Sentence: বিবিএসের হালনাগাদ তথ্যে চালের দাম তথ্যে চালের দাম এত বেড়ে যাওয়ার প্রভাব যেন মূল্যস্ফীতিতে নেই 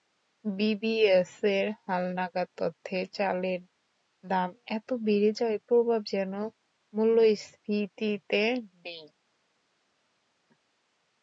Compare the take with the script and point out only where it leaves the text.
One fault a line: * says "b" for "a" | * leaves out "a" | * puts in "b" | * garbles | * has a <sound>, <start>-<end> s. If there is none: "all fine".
* leaves out "তথ্যে চালের দাম"